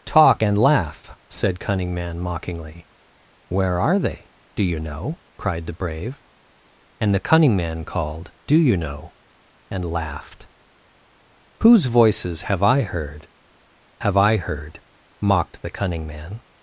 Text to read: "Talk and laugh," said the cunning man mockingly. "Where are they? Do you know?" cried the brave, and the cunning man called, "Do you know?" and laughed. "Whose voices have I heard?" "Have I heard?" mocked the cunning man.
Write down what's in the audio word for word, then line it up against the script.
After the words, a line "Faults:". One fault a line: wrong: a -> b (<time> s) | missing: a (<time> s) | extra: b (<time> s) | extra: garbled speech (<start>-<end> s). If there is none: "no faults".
"Talk and laugh," said cunning man mockingly. "Where are they? Do you know?" cried the brave, and the cunning man called, "Do you know?" and laughed. "Whose voices have I heard?" "Have I heard?" mocked the cunning man.
Faults:
missing: the (1.6 s)